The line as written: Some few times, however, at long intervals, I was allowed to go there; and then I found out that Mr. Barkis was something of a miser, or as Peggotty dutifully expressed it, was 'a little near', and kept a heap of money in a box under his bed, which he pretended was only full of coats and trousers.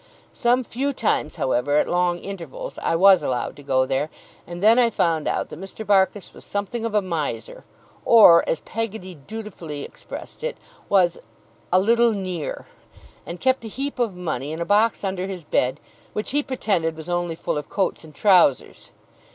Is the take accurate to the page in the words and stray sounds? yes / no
yes